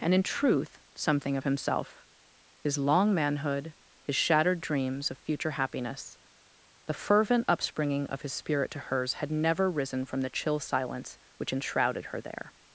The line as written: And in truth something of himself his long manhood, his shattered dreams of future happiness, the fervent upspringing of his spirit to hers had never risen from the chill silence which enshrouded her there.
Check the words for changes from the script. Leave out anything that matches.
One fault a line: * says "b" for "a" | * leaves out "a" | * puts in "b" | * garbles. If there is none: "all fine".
all fine